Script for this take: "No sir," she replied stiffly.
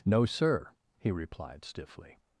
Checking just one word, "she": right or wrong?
wrong